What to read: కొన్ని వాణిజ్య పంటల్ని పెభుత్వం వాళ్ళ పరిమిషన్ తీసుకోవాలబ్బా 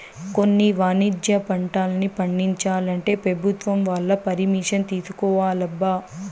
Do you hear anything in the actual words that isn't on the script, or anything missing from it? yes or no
yes